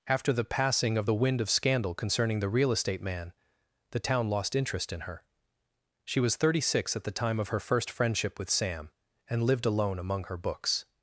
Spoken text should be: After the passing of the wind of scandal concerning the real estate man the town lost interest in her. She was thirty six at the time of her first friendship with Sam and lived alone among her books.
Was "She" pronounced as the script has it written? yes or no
yes